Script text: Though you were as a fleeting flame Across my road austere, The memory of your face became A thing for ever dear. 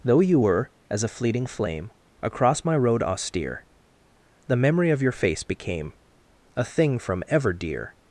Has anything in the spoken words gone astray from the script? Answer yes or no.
yes